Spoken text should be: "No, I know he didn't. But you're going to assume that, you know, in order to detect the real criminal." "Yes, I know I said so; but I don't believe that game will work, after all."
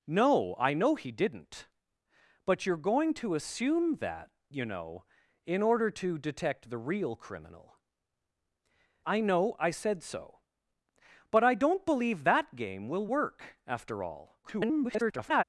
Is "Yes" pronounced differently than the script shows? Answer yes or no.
yes